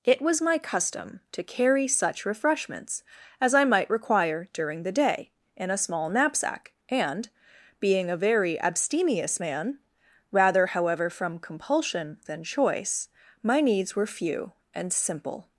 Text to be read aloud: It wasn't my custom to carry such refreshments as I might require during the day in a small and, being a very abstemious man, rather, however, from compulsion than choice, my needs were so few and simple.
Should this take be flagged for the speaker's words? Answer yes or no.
yes